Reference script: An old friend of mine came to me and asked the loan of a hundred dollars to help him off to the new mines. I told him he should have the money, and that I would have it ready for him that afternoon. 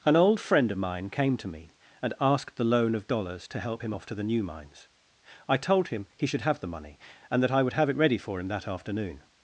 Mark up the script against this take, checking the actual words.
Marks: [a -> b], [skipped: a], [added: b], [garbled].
An old friend of mine came to me and asked the loan of [skipped: a hundred] dollars to help him off to the new mines. I told him he should have the money, and that I would have it ready for him that afternoon.